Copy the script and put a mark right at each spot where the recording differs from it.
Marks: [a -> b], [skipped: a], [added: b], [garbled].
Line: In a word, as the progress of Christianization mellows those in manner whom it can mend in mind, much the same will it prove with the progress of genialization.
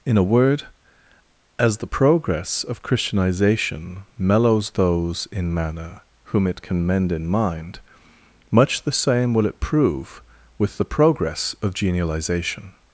In a word, as the progress of Christianization mellows those in manner whom it can mend in mind, much the same will it prove with the progress of genialization.